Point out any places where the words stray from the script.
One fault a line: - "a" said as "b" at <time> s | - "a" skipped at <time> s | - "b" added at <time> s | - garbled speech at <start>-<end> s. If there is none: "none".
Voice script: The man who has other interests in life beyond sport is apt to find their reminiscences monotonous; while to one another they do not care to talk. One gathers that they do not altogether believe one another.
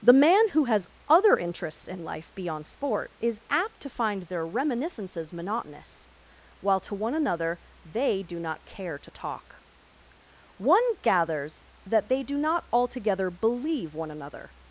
none